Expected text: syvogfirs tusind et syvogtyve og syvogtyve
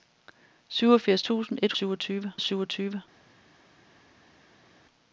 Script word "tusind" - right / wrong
right